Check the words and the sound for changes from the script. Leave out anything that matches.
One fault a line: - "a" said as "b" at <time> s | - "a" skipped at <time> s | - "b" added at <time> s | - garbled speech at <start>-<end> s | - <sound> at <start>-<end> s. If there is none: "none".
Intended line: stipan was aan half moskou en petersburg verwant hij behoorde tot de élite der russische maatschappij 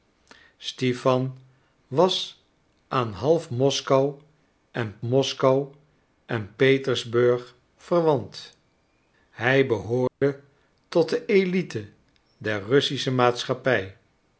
- "moskou en" added at 5.0 s
- dropout at 10.1-10.2 s